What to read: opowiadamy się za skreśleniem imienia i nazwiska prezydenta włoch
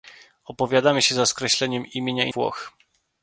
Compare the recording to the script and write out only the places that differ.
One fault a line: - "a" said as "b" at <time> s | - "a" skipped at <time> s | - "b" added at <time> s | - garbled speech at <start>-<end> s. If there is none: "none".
- "nazwiska prezydenta" skipped at 2.3 s